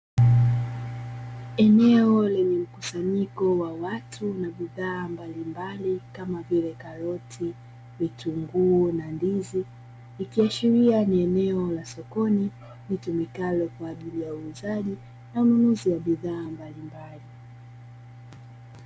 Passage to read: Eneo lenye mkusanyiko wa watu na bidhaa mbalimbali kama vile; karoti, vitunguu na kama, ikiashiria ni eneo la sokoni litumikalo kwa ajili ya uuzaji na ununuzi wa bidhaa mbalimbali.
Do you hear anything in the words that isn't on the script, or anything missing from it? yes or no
yes